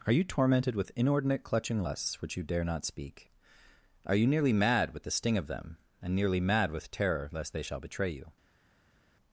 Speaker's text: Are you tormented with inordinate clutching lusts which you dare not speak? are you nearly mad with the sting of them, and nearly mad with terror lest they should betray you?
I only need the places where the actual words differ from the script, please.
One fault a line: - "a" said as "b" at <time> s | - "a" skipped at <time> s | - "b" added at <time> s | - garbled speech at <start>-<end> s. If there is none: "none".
- "should" said as "shall" at 7.6 s